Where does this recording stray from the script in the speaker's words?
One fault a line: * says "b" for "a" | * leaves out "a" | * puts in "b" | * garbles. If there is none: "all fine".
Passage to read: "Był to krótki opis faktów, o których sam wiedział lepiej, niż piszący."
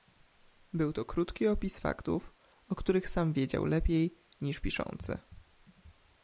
all fine